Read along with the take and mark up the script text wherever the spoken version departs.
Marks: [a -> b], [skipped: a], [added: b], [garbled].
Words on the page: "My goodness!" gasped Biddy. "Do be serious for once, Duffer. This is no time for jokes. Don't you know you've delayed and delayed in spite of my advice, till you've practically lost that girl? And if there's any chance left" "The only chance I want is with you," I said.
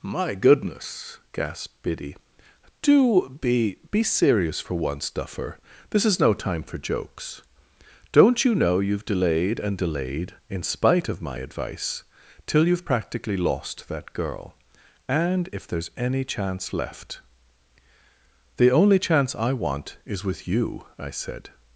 "My goodness!" gasped Biddy. "Do be [added: be] serious for once, Duffer. This is no time for jokes. Don't you know you've delayed and delayed in spite of my advice, till you've practically lost that girl? And if there's any chance left" "The only chance I want is with you," I said.